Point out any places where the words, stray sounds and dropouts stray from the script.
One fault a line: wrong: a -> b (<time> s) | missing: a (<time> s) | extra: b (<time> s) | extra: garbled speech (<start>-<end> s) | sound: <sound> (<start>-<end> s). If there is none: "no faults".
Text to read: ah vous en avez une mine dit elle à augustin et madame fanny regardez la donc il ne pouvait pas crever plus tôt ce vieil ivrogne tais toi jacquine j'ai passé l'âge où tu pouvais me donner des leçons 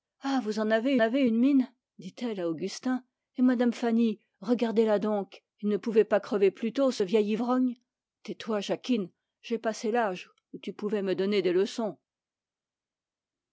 extra: avez (1.0 s)